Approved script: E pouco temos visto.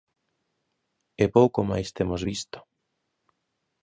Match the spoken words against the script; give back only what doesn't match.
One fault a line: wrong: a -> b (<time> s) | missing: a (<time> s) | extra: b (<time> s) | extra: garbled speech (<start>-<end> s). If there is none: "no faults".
extra: máis (1.7 s)